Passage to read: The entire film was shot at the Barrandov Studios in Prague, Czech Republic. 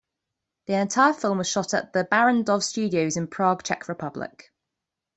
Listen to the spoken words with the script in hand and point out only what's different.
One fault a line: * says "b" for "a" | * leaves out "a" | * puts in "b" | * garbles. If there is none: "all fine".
all fine